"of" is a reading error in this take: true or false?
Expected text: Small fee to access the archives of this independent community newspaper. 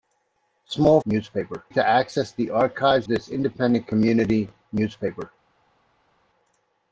true